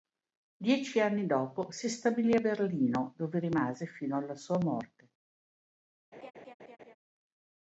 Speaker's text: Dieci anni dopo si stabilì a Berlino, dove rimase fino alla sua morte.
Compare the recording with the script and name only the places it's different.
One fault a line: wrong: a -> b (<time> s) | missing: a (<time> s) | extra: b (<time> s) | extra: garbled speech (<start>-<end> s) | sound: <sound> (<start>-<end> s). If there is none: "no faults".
sound: laugh (6.1-7.0 s)